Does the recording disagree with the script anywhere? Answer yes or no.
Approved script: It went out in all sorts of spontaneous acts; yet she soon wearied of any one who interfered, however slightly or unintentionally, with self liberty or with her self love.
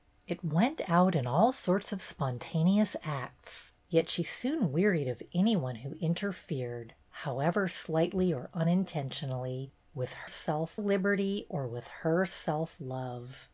no